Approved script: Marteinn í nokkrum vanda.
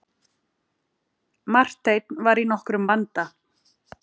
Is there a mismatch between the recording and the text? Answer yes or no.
yes